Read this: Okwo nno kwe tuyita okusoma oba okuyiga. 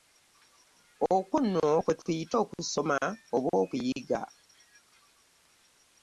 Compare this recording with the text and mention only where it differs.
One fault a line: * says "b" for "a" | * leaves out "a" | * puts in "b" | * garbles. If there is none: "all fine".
all fine